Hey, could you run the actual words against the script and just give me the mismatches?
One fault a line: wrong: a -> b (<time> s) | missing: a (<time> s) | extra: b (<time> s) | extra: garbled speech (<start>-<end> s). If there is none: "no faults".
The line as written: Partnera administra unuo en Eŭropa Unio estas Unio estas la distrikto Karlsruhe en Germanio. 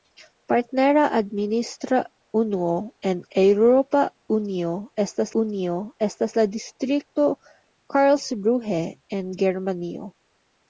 no faults